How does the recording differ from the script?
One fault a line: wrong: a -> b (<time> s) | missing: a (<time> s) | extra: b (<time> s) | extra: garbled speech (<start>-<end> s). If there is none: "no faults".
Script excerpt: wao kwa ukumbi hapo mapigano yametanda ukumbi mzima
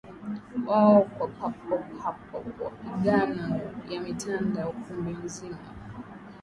wrong: ukumbi -> papo (1.3 s)